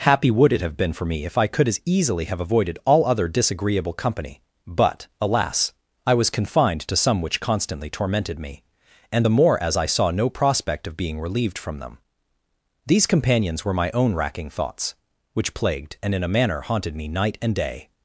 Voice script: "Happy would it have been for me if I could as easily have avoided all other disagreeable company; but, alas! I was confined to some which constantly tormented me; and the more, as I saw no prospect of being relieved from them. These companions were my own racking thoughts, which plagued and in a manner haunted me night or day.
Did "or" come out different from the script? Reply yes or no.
yes